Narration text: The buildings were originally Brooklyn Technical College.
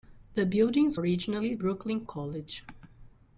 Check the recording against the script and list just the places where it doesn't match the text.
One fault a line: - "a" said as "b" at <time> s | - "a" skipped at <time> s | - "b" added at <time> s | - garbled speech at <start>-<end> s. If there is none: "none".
- "were" skipped at 1.0 s
- "Technical" skipped at 2.0 s